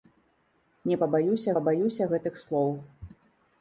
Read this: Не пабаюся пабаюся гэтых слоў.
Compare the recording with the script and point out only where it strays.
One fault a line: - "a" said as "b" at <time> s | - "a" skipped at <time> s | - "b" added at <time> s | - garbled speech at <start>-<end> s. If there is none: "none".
none